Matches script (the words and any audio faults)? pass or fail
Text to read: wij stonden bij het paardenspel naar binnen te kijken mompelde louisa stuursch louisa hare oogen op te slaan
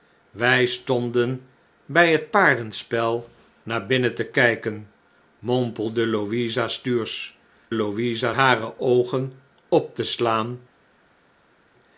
pass